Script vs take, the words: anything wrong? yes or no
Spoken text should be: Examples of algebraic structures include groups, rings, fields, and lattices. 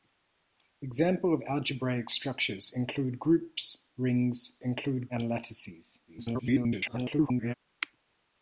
yes